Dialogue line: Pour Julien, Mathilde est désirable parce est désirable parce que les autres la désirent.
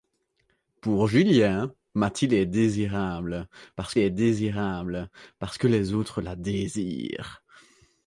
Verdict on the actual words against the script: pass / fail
pass